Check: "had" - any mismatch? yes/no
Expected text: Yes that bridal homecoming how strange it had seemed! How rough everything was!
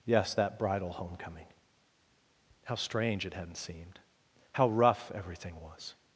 yes